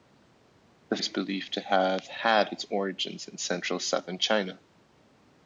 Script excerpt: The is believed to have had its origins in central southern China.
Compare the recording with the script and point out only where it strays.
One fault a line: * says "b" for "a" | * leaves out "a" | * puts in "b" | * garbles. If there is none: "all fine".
all fine